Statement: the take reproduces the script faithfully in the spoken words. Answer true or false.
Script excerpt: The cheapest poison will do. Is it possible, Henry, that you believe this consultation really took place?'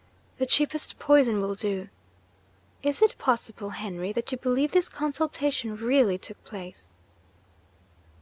true